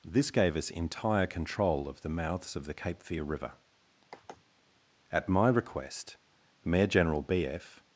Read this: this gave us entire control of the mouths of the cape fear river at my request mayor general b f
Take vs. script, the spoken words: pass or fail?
pass